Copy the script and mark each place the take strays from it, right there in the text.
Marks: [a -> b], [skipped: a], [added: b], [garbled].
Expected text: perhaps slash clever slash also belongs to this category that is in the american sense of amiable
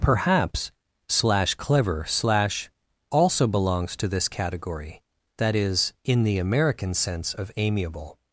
perhaps slash clever slash also belongs to this category that is in the american sense of amiable